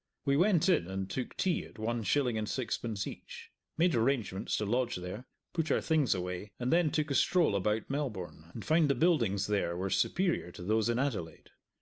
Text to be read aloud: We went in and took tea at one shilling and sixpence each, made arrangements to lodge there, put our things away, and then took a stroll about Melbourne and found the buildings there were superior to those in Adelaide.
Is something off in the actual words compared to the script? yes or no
no